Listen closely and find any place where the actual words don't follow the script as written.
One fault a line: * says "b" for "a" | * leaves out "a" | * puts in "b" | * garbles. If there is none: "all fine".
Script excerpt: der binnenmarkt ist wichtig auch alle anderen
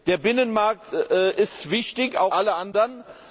all fine